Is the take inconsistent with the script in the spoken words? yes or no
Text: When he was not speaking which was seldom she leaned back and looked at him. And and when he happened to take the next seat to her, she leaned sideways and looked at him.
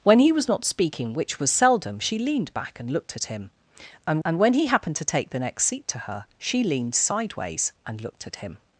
no